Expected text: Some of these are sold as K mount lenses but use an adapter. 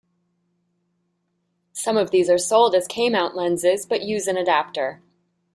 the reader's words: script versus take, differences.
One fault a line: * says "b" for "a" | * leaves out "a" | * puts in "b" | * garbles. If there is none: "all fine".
all fine